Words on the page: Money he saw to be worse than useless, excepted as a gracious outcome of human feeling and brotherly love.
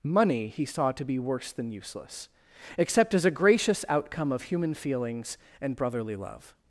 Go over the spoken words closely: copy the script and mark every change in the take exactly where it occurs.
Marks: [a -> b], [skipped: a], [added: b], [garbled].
Money he saw to be worse than useless, [excepted -> except] as a gracious outcome of human [feeling -> feelings] and brotherly love.